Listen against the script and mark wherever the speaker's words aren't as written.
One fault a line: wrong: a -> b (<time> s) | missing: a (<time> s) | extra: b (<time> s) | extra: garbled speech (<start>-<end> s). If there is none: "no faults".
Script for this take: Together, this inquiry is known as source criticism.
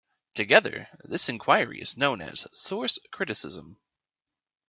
no faults